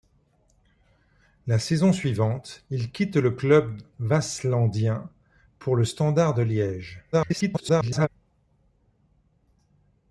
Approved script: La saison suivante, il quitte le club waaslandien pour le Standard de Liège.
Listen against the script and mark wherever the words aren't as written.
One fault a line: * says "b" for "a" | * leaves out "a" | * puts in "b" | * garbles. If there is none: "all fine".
* garbles